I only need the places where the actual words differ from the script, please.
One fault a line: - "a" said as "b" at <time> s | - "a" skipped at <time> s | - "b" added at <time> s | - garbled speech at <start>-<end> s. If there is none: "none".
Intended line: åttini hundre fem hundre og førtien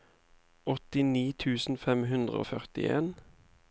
- "hundre" said as "tusen" at 1.4 s